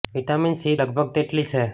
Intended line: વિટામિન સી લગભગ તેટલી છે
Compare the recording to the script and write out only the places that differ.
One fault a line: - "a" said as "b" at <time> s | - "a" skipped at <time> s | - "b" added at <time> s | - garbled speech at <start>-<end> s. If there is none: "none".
none